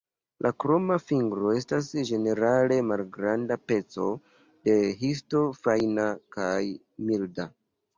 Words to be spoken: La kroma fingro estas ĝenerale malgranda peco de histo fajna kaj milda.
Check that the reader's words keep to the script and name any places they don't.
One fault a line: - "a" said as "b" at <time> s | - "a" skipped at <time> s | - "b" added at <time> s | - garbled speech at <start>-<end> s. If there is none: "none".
none